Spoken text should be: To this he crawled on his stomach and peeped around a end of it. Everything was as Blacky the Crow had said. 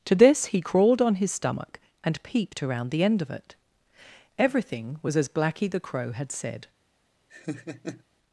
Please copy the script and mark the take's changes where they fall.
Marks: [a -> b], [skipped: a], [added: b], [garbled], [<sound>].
To this he crawled on his stomach and peeped around [a -> the] end of it. Everything was as Blacky the Crow had said. [laugh]